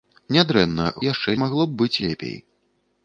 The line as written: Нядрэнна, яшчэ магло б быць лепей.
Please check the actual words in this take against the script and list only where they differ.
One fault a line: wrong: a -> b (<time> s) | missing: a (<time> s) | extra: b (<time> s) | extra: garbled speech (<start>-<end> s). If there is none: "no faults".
no faults